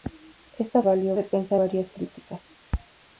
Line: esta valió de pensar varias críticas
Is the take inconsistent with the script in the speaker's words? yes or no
no